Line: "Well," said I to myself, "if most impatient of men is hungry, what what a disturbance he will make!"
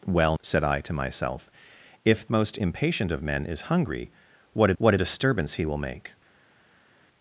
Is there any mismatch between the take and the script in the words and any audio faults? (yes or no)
no